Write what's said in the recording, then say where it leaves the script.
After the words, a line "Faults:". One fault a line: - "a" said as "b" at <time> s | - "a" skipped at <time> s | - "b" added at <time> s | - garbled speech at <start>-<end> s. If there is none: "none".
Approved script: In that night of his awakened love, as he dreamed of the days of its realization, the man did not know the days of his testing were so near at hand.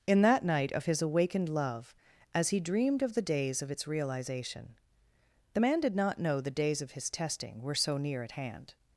In that night of his awakened love, as he dreamed of the days of its realization, the man did not know the days of his testing were so near at hand.
Faults:
none